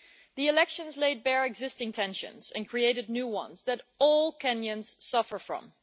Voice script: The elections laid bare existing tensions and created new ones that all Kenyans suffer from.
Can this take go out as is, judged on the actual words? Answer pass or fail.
pass